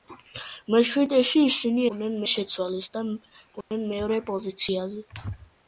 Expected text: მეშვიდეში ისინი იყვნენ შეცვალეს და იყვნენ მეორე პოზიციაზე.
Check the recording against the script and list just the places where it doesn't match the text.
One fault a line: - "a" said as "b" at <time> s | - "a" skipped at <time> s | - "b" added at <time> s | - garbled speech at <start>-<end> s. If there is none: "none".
none